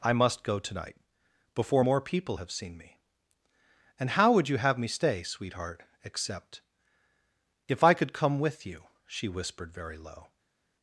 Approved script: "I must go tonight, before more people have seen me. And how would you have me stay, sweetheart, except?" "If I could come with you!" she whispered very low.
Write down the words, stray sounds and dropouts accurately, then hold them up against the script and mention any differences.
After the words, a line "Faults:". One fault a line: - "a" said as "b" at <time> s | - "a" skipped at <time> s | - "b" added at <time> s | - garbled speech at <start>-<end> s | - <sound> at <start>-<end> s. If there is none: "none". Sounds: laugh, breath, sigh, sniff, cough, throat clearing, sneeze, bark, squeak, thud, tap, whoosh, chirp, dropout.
"I must go tonight, before more people have seen me. And how would you have me stay, sweetheart, except?" "If I could come with you!" she whispered very low.
Faults:
none